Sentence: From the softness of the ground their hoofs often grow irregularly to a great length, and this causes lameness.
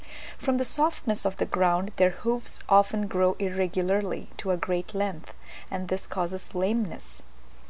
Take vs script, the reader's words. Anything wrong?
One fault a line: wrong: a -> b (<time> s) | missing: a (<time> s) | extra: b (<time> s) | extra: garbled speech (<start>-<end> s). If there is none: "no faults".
no faults